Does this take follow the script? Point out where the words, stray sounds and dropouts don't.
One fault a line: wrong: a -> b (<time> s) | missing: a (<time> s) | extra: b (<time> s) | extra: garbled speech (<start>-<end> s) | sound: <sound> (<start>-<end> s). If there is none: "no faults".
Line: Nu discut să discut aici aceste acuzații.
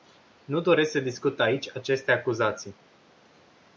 wrong: discut -> doresc (0.6 s)